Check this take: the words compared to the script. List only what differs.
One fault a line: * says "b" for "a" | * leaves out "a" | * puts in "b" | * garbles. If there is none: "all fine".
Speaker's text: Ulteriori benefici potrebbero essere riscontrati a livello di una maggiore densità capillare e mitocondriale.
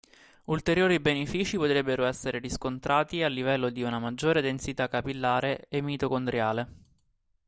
all fine